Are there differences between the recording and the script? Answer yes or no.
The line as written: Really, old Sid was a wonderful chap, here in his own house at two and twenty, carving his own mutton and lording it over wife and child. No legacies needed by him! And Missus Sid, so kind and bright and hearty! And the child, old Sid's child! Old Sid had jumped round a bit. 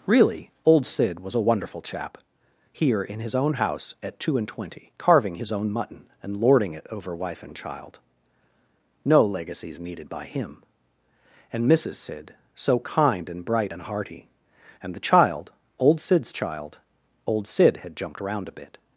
no